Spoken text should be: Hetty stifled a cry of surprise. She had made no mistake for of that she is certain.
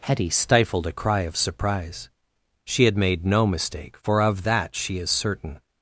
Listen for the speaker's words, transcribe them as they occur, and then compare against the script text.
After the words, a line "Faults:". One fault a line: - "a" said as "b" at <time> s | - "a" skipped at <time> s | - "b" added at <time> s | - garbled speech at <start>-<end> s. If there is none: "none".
Hetty stifled a cry of surprise. She had made no mistake for of that she is certain.
Faults:
none